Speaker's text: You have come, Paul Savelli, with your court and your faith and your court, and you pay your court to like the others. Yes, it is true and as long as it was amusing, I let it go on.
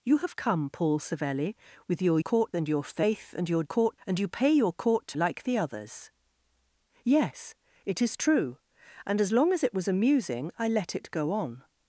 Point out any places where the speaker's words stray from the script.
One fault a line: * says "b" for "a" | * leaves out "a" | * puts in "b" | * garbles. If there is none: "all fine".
all fine